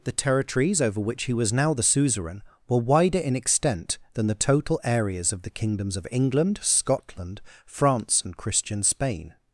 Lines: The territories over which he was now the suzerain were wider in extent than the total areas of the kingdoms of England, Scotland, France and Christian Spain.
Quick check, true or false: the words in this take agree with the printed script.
true